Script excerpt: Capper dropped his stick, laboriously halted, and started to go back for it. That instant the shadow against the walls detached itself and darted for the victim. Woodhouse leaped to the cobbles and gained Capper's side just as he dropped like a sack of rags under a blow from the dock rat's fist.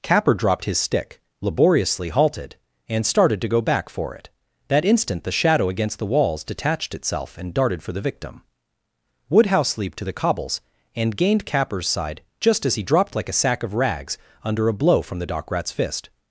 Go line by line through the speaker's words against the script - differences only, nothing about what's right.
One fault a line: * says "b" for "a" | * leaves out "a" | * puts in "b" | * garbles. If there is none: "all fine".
all fine